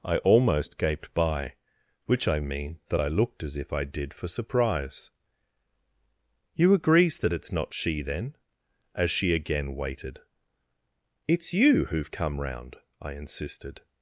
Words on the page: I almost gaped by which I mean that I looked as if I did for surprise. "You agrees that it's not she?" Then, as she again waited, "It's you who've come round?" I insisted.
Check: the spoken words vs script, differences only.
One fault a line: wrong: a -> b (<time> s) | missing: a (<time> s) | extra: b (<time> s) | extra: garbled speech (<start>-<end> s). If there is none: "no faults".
no faults